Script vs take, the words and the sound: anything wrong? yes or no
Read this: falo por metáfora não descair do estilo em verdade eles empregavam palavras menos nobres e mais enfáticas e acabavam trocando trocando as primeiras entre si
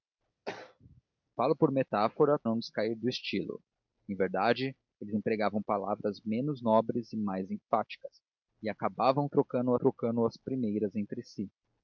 yes